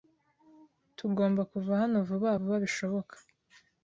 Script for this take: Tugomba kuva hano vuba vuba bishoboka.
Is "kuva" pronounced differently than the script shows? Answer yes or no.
no